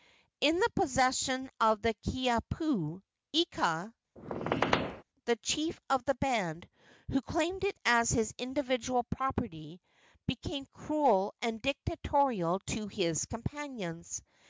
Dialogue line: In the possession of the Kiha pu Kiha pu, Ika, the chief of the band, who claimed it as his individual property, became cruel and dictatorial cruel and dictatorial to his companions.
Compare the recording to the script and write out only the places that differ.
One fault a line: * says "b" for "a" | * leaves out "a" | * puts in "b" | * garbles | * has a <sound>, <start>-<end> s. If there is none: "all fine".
* leaves out "Kiha pu"
* has a squeak, 4.2-5.0 s
* leaves out "cruel and dictatorial"